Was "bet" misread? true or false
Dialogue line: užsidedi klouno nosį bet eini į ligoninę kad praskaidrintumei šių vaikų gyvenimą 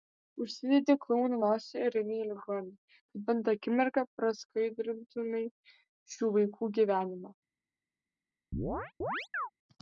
true